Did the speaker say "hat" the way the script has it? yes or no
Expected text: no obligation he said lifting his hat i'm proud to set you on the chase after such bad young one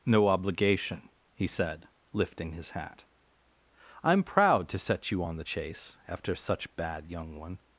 yes